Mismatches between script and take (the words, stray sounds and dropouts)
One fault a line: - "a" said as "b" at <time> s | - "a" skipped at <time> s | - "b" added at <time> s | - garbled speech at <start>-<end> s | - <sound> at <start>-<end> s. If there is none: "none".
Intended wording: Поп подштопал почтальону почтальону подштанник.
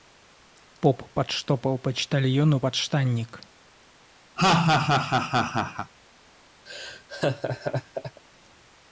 - "почтальону" skipped at 2.6 s
- laugh at 4.4-5.9 s
- laugh at 6.7-8.2 s